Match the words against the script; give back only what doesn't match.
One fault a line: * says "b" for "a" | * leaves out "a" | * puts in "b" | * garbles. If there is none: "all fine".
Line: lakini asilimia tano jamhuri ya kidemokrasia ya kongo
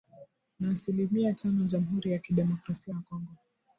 * says "na" for "lakini"